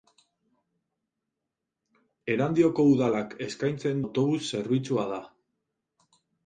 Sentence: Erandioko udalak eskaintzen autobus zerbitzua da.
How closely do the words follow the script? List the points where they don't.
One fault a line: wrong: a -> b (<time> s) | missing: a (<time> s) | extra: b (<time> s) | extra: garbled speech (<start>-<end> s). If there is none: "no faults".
no faults